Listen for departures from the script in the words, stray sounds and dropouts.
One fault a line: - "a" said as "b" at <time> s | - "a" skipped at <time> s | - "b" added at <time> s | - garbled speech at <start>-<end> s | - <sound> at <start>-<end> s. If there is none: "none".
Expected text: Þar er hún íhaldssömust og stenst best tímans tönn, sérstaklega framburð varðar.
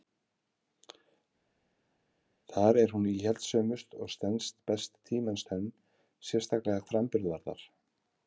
none